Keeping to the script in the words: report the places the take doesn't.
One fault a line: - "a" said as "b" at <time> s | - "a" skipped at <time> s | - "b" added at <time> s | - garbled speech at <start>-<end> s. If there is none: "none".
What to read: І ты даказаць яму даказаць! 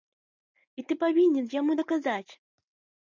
- "даказаць" said as "павінен" at 1.1 s